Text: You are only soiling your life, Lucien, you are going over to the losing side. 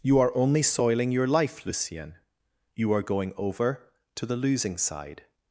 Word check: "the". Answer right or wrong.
right